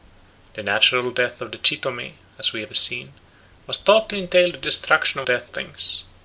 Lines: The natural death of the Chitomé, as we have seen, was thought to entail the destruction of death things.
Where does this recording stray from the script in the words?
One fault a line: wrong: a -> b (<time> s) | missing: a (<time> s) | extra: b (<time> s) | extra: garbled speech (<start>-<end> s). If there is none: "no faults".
no faults